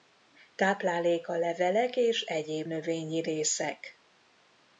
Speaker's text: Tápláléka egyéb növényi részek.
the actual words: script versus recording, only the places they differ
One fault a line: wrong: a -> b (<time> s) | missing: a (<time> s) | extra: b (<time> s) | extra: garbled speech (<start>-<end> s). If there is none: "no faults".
extra: levelek és (1.4 s)